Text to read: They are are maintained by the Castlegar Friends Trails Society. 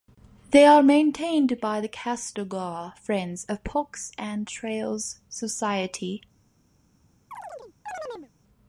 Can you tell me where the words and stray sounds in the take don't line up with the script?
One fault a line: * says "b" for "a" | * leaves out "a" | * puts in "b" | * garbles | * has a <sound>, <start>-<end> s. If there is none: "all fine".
* leaves out "are"
* puts in "of Parks and"
* has a chirp, 7.3-8.3 s